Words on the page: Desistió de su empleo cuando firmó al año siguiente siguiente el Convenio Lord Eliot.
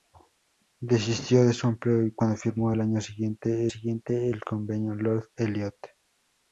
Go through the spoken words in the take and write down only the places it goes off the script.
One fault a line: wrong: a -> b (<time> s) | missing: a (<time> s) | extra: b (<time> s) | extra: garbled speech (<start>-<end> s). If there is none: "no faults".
no faults